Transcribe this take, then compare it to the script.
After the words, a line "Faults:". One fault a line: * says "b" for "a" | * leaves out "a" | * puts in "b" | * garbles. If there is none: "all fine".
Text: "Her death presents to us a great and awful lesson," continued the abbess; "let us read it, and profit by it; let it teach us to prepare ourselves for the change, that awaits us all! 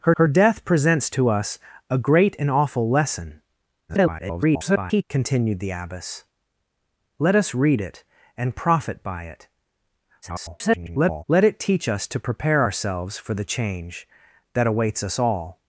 "Her her death presents to us a great and awful lesson," [garbled] continued the abbess; "let us read it, and profit by it; [garbled] let it teach us to prepare ourselves for the change, that awaits us all!
Faults:
* puts in "her"
* garbles
* garbles